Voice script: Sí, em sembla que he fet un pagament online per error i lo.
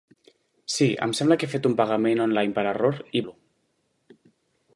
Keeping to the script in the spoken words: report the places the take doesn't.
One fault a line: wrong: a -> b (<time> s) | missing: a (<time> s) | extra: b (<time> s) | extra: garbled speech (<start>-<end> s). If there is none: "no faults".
no faults